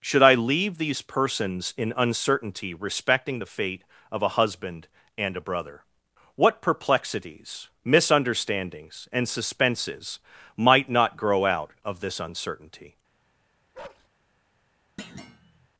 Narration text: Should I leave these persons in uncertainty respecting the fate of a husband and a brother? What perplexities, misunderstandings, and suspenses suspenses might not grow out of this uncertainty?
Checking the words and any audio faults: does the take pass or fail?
fail